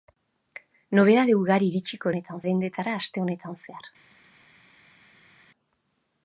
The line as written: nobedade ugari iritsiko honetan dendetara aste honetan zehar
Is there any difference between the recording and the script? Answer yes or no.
no